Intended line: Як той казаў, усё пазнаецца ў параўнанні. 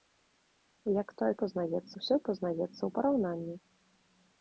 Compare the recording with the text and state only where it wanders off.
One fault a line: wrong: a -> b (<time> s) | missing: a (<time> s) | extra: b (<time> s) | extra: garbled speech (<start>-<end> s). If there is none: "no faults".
wrong: казаў -> пазнаецца (1.4 s)